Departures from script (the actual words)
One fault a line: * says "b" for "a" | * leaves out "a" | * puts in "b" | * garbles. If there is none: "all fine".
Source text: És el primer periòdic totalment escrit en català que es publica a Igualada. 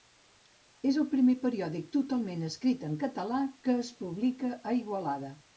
all fine